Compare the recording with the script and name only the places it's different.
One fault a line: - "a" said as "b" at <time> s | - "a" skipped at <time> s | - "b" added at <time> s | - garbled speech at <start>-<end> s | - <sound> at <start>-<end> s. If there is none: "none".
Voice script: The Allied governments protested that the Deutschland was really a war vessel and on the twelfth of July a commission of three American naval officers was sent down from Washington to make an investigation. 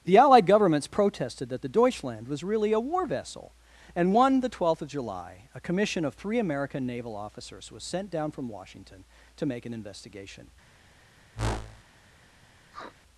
- "on" said as "one" at 4.1 s
- whoosh at 11.3-11.8 s
- sniff at 12.7-13.0 s